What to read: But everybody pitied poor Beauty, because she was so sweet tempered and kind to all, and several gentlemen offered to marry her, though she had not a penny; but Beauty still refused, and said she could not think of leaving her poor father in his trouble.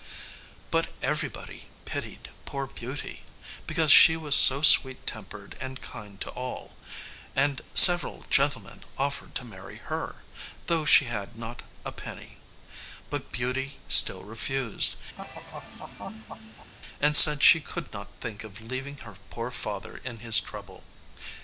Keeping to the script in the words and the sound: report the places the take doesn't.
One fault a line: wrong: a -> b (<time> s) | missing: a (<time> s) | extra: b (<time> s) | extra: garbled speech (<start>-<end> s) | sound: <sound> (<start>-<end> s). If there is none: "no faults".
sound: laugh (15.2-16.7 s)